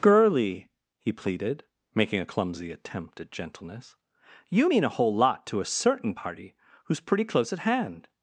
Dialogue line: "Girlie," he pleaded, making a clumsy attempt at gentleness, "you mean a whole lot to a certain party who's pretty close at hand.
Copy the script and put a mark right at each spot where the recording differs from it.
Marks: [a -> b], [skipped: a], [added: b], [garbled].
"Girlie," he pleaded, making a clumsy attempt at gentleness, "you mean a whole lot to a certain party who's pretty close at hand.